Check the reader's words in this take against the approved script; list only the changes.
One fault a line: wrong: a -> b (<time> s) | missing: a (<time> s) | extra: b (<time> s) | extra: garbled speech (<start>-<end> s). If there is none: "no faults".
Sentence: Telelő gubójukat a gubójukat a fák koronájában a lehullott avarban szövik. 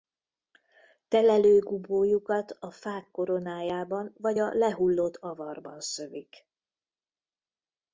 missing: gubójukat a (2.7 s)
extra: vagy (4.2 s)